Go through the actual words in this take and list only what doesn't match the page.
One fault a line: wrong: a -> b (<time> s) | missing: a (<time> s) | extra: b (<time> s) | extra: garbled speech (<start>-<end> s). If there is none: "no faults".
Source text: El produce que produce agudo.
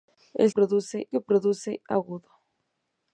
no faults